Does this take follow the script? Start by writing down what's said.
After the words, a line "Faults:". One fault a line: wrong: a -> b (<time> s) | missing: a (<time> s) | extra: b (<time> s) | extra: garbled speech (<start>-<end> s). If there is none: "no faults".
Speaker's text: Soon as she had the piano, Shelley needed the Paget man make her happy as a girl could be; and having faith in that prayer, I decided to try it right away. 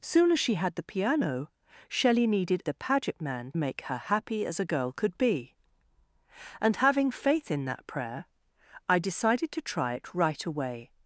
Soon as she had the piano, Shelley needed the Paget man make her happy as a girl could be; and having faith in that prayer, I decided to try it right away.
Faults:
no faults